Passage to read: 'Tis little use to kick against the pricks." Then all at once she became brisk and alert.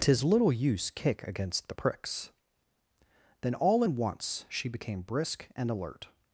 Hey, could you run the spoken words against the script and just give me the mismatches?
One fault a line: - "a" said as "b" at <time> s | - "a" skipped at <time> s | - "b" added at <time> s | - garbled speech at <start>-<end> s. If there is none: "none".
- "to" skipped at 0.9 s
- "at" said as "in" at 3.8 s